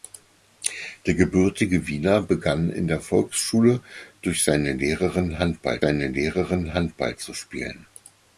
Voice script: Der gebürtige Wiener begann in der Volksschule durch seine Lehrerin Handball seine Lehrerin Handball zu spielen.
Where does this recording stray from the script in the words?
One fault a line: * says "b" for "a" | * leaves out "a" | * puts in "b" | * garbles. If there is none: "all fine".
all fine